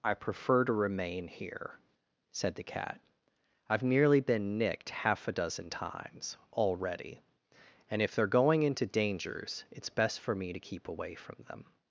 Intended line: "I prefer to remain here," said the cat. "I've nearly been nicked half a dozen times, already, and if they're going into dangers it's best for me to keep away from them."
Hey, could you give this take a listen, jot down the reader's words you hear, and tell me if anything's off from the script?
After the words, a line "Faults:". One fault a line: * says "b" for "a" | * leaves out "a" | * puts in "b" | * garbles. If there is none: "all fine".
"I prefer to remain here," said the cat. "I've nearly been nicked half a dozen times, already, and if they're going into dangers it's best for me to keep away from them."
Faults:
all fine